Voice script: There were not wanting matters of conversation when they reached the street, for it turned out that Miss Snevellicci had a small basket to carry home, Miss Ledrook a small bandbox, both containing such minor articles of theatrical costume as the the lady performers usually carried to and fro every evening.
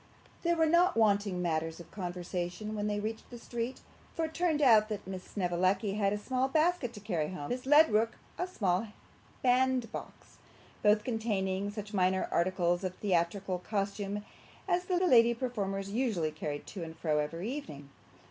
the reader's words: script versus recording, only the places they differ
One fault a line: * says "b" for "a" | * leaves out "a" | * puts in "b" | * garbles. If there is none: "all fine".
all fine